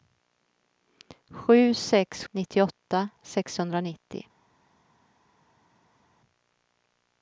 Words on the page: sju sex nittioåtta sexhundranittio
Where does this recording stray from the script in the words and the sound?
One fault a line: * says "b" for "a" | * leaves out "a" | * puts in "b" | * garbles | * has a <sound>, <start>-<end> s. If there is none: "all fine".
all fine